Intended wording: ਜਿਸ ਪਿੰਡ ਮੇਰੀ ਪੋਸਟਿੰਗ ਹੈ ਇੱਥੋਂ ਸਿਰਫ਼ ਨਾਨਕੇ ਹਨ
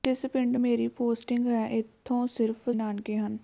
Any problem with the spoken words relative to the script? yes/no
no